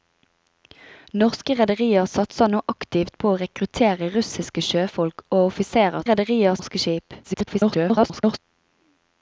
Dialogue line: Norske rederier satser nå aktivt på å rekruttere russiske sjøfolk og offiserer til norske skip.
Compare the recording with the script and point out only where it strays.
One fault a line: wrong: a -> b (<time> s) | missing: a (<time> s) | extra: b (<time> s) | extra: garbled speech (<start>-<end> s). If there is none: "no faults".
wrong: til -> rederier (6.1 s)
extra: garbled speech (7.2-8.4 s)